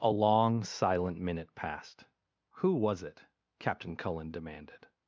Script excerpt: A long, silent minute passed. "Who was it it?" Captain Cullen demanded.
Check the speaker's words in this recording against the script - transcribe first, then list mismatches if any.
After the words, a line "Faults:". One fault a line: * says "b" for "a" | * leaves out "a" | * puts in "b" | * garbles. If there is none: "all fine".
A long, silent minute passed. "Who was it?" Captain Cullen demanded.
Faults:
* leaves out "it"